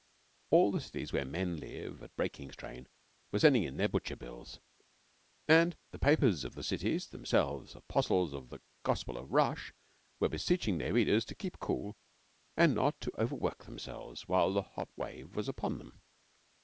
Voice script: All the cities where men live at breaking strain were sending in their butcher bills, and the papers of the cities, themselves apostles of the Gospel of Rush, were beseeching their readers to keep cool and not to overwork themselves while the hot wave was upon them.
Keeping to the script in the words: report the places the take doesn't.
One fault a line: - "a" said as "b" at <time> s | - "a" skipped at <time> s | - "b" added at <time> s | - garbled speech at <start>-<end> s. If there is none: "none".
none